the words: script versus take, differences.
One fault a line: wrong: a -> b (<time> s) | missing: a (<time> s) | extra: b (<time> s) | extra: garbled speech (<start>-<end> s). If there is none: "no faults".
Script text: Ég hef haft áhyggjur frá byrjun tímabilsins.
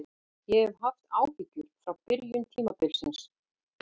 no faults